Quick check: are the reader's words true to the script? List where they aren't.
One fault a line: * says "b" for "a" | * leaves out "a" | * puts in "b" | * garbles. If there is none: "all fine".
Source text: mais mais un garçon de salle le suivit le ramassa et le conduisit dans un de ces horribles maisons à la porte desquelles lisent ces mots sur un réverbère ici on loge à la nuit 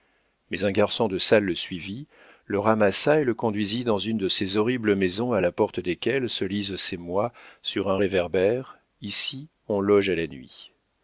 * leaves out "mais"
* says "une" for "un"
* puts in "se"